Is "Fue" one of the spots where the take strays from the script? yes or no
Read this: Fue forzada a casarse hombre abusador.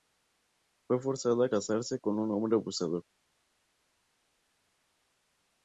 no